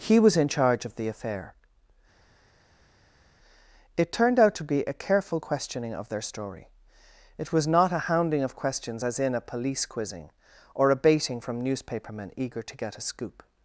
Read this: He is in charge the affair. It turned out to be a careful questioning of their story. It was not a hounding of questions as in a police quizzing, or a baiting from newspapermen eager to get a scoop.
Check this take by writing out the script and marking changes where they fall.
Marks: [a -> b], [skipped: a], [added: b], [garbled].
He [is -> was] in charge [added: of] the affair. It turned out to be a careful questioning of their story. It was not a hounding of questions as in a police quizzing, or a baiting from newspapermen eager to get a scoop.